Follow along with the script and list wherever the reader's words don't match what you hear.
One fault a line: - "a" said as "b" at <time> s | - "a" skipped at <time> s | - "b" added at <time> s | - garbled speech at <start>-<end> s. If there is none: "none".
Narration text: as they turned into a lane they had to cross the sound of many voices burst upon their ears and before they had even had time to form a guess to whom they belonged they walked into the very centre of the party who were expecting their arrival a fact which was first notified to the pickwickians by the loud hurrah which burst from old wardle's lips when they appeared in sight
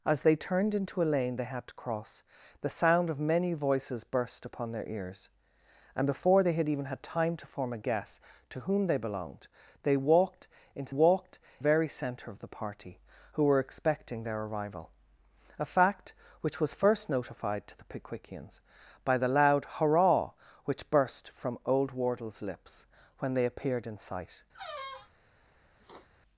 - "the" said as "walked" at 10.9 s